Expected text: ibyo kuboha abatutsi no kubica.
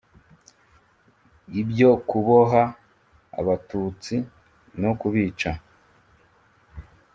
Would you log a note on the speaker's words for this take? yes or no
no